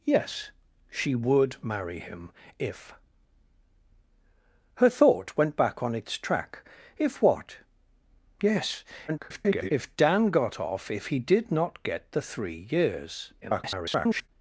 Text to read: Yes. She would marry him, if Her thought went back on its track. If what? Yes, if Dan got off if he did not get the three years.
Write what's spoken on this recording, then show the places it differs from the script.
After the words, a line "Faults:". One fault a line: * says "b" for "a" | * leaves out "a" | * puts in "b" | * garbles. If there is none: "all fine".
Yes. She would marry him, if Her thought went back on its track. If what? Yes, [garbled] if Dan got off if he did not get the three years. [garbled]
Faults:
* garbles
* garbles